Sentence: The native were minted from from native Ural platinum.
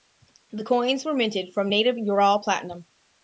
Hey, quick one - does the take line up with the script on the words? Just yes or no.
no